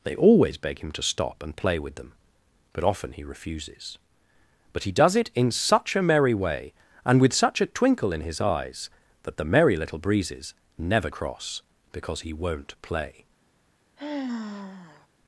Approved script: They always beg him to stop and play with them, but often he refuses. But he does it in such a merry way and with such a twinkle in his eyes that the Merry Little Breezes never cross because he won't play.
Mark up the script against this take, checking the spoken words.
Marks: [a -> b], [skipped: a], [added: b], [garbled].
They always beg him to stop and play with them, but often he refuses. But he does it in such a merry way and with such a twinkle in his eyes that the Merry Little Breezes never cross because he won't play.